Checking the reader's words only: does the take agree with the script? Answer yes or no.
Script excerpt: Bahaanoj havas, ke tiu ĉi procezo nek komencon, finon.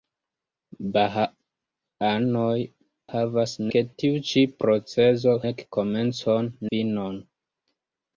yes